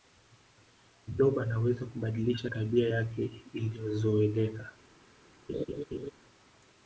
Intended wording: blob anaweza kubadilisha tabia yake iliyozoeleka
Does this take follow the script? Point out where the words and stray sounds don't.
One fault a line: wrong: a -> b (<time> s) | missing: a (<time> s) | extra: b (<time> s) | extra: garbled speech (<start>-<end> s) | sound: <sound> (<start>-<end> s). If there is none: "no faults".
sound: laugh (5.5-6.1 s)